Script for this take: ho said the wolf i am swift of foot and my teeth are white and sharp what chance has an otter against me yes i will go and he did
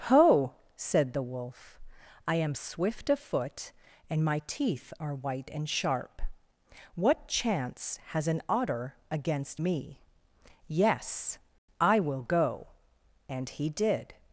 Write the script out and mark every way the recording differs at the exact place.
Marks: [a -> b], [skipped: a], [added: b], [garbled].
ho said the wolf i am swift of foot and my teeth are white and sharp what chance has an otter against me yes i will go and he did